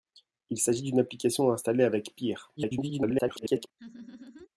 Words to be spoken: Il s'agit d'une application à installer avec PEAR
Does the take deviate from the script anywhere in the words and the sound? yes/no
yes